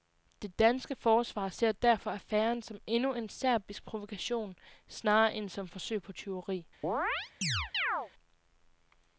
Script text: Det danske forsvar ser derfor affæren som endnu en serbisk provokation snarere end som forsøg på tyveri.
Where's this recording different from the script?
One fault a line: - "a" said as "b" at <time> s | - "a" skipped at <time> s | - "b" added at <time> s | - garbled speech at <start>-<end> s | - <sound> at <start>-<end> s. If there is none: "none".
- chirp at 6.8-8.1 s